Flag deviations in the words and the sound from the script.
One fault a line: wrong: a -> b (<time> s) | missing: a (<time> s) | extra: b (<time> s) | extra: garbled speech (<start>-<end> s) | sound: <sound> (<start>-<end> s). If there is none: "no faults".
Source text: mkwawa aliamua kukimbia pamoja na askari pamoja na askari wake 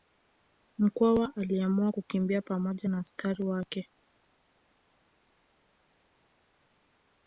missing: pamoja na askari (3.4 s)